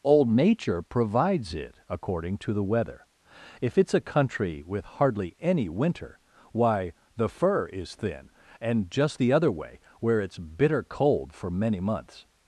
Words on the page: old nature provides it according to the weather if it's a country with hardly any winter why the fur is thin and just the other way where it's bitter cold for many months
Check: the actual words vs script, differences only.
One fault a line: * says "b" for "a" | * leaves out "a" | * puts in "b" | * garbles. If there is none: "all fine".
all fine